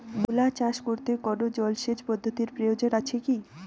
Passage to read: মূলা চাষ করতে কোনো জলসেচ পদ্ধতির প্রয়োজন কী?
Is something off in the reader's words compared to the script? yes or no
yes